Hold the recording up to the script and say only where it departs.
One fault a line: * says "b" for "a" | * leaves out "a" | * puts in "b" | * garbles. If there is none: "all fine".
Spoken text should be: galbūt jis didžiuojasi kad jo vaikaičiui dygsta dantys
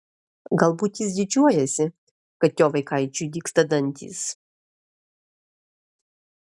all fine